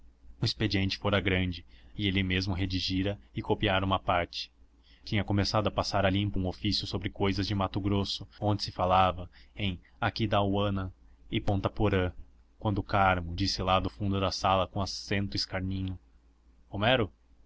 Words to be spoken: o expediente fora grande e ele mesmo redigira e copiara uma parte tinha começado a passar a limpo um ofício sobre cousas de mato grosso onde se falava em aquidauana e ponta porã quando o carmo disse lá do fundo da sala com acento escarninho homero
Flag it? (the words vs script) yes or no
no